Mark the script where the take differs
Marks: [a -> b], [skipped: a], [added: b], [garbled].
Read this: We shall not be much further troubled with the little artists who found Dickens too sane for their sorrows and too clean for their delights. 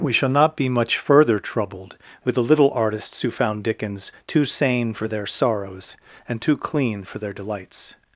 We shall not be much further troubled with the little artists who found Dickens too sane for their sorrows and too clean for their delights.